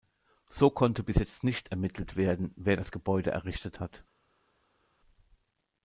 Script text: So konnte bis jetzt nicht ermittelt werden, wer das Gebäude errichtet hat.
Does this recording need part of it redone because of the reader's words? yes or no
no